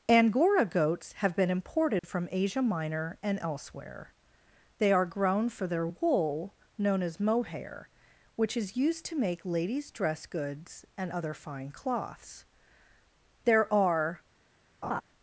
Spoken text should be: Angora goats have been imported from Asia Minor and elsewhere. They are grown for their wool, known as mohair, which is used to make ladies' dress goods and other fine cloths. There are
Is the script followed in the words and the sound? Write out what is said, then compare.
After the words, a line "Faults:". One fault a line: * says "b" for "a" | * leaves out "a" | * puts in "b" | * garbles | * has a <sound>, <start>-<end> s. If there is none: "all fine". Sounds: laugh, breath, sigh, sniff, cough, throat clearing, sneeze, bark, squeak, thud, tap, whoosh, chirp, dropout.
Angora goats have been imported from Asia Minor and elsewhere. They are grown for their wool, known as mohair, which is used to make ladies' dress goods and other fine cloths. There are
Faults:
* has a dropout, 2.0-2.0 s
* has a laugh, 14.8-15.0 s